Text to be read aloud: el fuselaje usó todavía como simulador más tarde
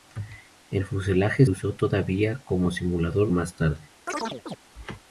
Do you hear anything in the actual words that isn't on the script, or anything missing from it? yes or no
no